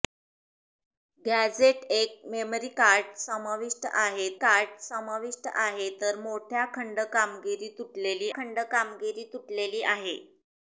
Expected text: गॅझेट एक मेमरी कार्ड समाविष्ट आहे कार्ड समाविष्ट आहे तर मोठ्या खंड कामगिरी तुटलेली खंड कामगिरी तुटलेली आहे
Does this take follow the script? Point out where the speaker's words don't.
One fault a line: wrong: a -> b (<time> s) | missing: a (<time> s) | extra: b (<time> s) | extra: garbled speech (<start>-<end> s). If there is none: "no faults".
no faults